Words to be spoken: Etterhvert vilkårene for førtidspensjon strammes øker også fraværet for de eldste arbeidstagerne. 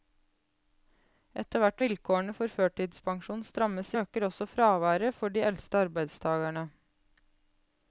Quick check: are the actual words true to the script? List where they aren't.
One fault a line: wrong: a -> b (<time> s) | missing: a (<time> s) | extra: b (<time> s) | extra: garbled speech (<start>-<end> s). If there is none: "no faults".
no faults